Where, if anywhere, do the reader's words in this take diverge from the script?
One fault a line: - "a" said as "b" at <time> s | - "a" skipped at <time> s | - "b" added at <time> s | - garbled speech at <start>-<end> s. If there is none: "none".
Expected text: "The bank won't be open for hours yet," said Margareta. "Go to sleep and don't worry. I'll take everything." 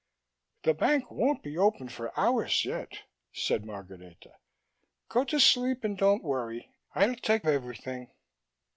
none